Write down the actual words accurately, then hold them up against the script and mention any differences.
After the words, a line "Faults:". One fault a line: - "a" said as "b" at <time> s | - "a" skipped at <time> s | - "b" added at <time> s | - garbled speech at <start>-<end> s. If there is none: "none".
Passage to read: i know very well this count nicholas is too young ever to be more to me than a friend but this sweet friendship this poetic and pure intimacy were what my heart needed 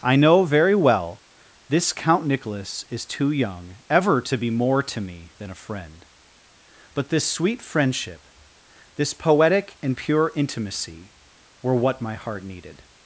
i know very well this count nicholas is too young ever to be more to me than a friend but this sweet friendship this poetic and pure intimacy were what my heart needed
Faults:
none